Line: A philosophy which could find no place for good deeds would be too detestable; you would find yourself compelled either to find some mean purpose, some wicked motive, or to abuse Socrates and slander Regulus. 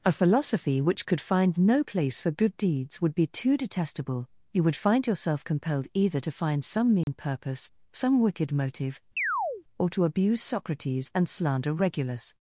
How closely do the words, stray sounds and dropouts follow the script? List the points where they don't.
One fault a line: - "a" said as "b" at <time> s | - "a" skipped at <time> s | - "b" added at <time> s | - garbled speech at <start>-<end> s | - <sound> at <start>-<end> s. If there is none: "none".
- dropout at 7.0-7.1 s
- chirp at 9.2-9.6 s